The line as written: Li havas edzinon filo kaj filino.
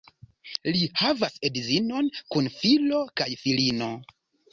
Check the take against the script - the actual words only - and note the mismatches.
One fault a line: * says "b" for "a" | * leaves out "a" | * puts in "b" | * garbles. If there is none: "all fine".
* puts in "kun"